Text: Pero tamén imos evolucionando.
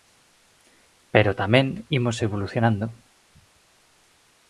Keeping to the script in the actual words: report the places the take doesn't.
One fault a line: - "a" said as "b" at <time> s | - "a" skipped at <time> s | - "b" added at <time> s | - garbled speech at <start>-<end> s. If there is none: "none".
none